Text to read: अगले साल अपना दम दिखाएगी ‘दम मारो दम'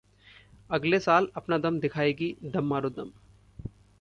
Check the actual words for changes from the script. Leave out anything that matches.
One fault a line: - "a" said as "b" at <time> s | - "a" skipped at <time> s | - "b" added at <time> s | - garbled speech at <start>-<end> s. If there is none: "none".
none